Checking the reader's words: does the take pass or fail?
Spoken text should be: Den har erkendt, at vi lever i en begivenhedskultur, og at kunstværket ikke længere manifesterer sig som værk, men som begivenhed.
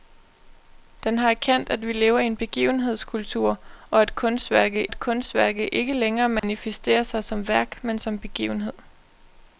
fail